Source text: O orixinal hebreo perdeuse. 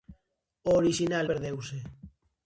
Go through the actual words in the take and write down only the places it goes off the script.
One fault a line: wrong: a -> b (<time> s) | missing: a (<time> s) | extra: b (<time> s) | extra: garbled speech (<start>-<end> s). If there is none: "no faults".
missing: hebreo (1.3 s)